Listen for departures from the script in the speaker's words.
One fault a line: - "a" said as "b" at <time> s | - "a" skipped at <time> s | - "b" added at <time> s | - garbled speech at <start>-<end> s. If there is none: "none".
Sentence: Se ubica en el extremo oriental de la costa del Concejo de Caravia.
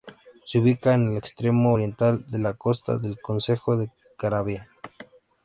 none